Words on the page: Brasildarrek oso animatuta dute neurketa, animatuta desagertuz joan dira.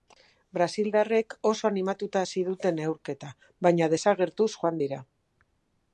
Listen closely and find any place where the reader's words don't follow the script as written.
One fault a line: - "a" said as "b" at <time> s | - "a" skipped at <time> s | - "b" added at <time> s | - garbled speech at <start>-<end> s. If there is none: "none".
- "hasi" added at 2.2 s
- "animatuta" said as "baina" at 3.7 s